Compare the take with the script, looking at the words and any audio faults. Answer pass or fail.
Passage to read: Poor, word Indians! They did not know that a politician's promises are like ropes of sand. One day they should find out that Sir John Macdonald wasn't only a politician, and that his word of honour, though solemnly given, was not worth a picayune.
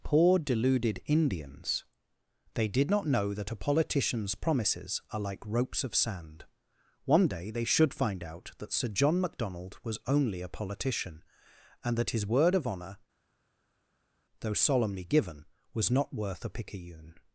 fail